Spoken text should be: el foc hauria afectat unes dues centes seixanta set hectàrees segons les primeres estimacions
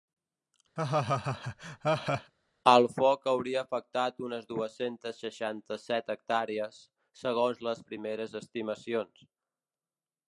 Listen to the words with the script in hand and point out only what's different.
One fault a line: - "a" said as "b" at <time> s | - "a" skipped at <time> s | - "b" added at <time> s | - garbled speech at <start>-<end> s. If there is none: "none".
none